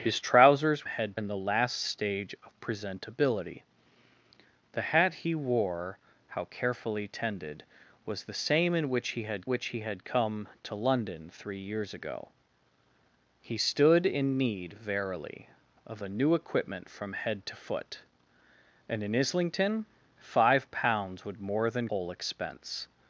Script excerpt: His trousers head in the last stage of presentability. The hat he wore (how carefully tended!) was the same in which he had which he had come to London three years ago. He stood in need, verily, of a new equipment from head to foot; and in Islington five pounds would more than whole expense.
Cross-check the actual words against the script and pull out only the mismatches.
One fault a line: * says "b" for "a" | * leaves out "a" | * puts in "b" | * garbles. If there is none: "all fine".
all fine